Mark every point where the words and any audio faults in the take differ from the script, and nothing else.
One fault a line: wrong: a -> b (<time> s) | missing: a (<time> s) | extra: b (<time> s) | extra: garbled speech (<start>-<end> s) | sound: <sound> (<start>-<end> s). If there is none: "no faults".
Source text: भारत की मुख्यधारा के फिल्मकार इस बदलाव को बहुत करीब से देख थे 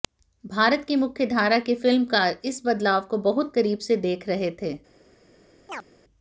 extra: रहे (4.3 s)
sound: chirp (5.7-5.8 s)